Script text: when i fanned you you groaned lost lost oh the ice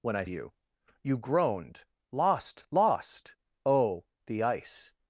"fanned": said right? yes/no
no